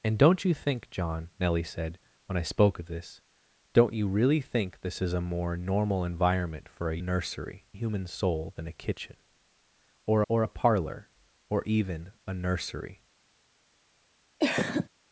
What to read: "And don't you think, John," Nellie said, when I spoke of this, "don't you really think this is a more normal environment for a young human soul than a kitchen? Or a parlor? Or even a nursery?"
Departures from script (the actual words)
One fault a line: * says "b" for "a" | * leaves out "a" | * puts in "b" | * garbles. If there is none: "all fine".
* says "nursery" for "young"
* puts in "or"